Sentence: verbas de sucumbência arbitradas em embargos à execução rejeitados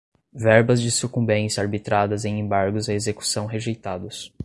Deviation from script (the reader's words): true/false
false